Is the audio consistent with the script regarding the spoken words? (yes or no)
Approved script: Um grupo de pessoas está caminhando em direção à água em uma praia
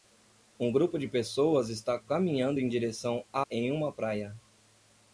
no